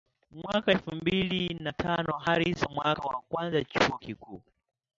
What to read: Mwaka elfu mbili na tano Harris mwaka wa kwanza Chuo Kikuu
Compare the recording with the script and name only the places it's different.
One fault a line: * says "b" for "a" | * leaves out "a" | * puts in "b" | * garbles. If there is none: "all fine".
all fine